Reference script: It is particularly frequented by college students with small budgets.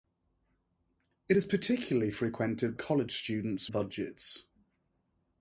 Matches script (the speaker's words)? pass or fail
fail